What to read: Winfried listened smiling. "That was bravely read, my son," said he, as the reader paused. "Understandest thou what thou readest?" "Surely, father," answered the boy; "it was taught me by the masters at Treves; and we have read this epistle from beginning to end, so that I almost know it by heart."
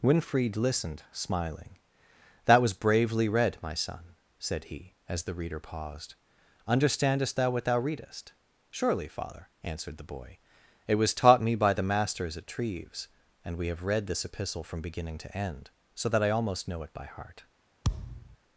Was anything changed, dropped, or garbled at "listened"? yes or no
no